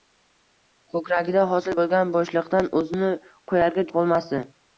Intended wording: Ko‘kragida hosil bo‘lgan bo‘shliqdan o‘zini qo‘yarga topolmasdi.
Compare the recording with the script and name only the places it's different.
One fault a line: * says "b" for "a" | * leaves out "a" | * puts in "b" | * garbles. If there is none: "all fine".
all fine